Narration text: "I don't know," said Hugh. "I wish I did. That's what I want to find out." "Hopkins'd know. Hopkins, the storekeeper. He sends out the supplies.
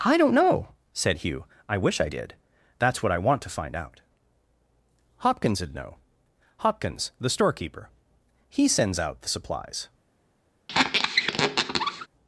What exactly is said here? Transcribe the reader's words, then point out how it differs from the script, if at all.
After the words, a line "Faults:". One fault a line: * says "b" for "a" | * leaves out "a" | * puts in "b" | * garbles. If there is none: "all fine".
"I don't know," said Hugh. "I wish I did. That's what I want to find out." "Hopkins'd know. Hopkins, the storekeeper. He sends out the supplies.
Faults:
all fine